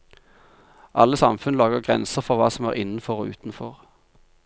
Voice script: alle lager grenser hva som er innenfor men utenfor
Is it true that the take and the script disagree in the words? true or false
true